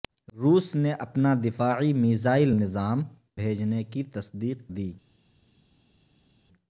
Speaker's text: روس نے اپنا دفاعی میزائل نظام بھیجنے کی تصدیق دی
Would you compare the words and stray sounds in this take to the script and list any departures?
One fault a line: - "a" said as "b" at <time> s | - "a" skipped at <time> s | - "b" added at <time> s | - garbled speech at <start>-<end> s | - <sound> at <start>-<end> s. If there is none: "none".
none